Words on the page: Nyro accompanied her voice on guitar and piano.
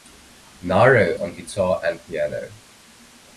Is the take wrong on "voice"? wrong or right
wrong